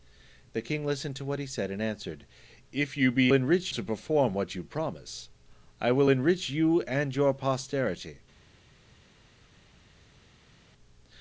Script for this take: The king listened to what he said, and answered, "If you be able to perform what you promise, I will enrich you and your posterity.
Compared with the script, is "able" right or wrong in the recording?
wrong